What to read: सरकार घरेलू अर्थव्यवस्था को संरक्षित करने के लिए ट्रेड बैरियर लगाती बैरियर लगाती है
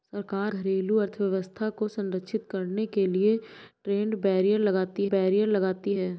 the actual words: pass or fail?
pass